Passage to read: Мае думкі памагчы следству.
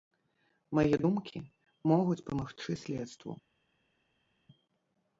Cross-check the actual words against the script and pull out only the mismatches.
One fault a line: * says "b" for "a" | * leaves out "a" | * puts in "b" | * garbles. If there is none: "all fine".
* puts in "могуць"